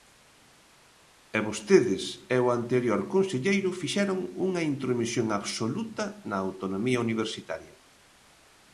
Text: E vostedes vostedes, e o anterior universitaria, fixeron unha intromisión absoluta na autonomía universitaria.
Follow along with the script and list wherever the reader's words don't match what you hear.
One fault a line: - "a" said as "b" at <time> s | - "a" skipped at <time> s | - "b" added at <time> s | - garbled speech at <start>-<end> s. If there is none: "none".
- "vostedes" skipped at 2.0 s
- "universitaria" said as "conselleiro" at 3.1 s